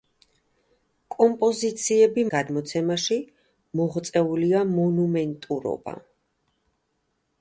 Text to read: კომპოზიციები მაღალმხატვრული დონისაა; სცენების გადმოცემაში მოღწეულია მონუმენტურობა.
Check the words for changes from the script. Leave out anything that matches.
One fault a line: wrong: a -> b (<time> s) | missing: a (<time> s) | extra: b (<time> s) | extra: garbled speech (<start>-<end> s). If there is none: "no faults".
missing: მაღალმხატვრული დონისაა სცენების (2.2 s)